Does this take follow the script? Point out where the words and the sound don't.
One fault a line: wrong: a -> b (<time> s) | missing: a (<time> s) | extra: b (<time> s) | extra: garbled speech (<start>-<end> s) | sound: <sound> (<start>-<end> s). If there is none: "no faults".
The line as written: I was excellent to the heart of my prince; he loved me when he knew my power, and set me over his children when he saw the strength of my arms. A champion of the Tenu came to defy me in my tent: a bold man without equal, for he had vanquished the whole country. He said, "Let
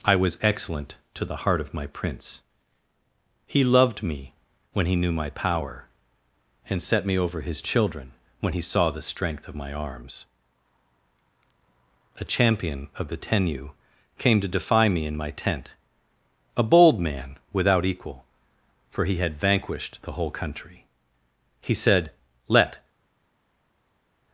no faults